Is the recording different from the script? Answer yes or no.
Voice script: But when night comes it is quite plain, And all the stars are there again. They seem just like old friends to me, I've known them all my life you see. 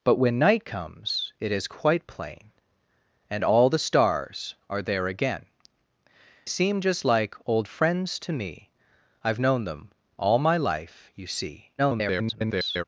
yes